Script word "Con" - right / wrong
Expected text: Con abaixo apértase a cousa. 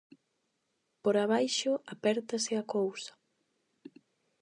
wrong